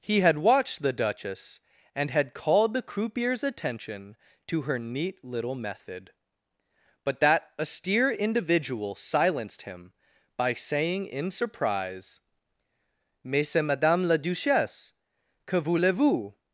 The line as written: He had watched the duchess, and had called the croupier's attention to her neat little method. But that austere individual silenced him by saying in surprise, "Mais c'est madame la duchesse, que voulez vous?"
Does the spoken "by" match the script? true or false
true